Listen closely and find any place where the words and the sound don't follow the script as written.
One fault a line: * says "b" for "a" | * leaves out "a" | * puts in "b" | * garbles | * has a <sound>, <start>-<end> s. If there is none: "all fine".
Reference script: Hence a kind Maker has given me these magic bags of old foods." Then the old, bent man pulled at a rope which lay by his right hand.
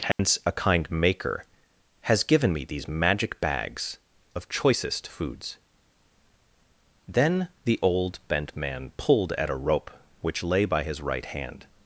* has a dropout, 0.1-0.2 s
* says "choicest" for "old"